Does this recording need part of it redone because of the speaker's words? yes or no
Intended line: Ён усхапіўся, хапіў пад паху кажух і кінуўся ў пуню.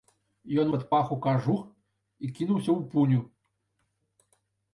yes